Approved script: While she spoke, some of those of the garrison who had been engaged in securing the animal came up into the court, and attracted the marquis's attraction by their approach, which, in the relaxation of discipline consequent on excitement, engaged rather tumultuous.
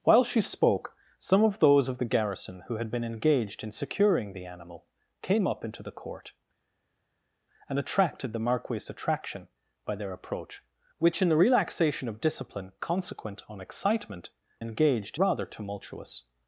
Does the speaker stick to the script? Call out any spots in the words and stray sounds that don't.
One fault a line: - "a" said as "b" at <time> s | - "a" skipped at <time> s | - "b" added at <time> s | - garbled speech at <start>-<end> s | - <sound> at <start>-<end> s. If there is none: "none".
none